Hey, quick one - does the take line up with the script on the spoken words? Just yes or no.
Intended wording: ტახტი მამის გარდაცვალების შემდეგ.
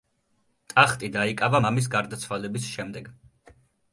no